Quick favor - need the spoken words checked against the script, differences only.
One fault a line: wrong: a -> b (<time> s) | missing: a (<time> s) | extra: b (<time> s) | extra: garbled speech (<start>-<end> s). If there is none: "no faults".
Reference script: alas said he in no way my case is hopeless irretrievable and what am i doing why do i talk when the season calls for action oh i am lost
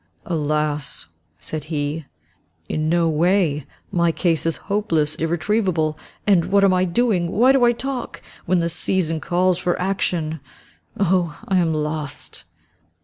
no faults